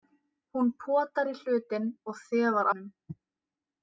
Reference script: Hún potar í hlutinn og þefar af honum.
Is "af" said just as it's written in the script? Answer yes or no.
no